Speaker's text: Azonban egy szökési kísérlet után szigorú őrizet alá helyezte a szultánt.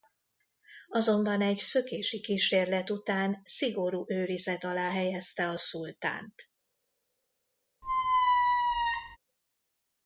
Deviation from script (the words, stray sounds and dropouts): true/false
true